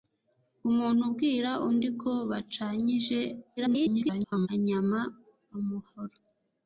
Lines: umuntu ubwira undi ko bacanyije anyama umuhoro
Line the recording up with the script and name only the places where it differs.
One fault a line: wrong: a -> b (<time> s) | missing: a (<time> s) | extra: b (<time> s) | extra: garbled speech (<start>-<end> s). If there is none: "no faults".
extra: garbled speech (3.6-4.5 s)